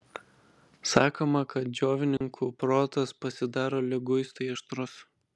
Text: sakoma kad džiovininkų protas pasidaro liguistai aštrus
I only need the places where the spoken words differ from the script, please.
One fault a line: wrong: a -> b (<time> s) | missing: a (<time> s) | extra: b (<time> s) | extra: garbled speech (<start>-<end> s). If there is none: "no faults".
no faults